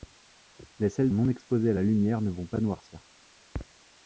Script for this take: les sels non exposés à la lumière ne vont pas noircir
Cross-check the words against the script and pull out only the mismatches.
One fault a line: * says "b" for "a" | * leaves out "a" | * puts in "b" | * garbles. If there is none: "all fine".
all fine